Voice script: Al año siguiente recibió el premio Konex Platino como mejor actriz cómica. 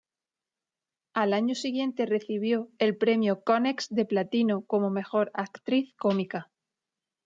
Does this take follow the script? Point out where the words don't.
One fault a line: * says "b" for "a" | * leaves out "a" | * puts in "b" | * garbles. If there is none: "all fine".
* puts in "de"